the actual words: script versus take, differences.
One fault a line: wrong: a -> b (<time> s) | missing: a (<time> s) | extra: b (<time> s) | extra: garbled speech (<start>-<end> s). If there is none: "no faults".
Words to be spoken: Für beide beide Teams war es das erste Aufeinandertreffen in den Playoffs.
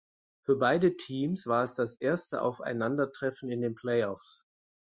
missing: beide (1.0 s)